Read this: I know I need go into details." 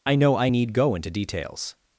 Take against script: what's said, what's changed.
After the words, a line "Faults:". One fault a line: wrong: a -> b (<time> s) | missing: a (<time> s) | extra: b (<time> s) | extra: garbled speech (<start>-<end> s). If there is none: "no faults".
I know I need go into details."
Faults:
no faults